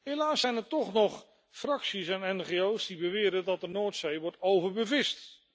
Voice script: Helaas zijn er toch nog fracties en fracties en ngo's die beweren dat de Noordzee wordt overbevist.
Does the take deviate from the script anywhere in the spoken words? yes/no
yes